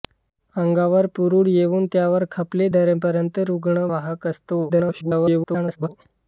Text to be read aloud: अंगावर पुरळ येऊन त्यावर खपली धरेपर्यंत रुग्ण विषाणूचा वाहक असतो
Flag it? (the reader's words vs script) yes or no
yes